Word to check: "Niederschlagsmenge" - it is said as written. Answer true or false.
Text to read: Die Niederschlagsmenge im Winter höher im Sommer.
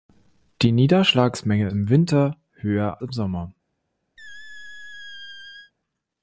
true